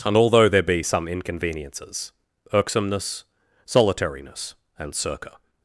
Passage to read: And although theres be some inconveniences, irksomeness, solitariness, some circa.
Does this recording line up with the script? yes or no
no